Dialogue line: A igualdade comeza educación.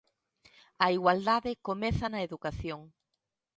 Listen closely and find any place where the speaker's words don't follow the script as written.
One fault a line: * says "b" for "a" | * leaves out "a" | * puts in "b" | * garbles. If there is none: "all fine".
* puts in "na"